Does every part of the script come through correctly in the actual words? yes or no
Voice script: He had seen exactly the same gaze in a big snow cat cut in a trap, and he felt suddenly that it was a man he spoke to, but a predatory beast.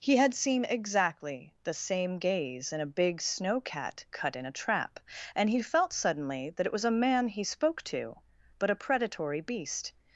yes